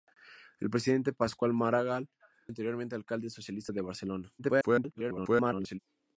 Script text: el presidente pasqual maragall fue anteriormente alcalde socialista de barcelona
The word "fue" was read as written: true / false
false